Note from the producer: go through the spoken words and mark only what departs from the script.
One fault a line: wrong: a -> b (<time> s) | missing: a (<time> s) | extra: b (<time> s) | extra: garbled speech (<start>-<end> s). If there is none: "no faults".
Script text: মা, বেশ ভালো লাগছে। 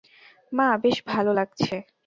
no faults